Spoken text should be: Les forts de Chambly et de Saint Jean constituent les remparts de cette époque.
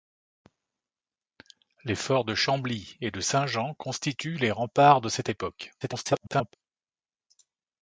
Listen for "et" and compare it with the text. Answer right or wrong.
right